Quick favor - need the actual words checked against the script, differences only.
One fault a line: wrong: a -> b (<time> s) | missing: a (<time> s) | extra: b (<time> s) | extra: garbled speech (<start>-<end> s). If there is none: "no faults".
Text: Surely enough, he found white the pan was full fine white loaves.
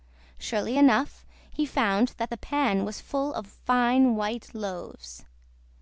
wrong: white -> that (2.2 s)
extra: of (3.3 s)